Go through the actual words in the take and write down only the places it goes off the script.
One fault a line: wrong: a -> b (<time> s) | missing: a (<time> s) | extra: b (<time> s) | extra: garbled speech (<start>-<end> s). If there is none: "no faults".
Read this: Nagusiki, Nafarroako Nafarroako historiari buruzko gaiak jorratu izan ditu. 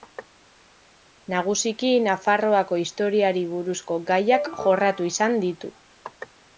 missing: Nafarroako (2.8 s)